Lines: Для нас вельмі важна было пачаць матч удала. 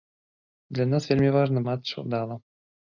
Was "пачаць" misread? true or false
true